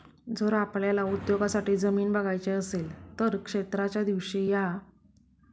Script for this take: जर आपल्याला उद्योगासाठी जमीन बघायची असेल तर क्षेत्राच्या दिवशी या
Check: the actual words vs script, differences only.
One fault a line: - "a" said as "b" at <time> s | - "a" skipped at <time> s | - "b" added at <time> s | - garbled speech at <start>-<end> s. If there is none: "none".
none